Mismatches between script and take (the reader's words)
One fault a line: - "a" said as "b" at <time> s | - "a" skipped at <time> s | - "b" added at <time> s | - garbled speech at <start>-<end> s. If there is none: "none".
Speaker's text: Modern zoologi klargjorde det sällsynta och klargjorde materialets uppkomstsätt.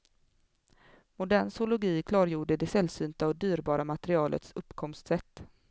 - "klargjorde" said as "dyrbara" at 3.4 s